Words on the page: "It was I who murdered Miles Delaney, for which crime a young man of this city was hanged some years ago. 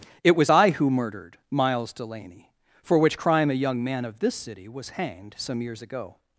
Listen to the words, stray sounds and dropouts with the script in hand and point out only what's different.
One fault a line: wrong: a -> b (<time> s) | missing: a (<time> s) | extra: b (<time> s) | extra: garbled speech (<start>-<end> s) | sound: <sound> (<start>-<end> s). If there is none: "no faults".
no faults